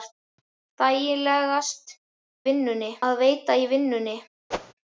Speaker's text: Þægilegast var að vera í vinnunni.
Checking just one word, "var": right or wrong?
wrong